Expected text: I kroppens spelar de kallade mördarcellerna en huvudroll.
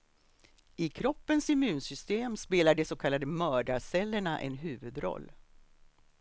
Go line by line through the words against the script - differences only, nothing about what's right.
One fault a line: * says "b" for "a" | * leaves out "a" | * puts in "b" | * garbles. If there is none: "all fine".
* puts in "immunsystem"
* puts in "så"